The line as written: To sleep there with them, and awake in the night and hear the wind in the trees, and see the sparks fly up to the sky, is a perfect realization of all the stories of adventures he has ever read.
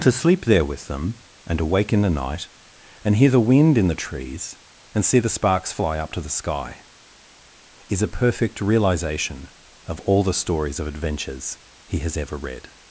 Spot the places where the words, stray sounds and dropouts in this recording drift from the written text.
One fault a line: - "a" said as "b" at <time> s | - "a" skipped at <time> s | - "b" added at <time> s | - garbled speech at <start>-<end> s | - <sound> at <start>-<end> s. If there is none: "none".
none